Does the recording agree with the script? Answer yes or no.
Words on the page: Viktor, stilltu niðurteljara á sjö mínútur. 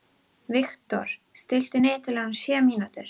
yes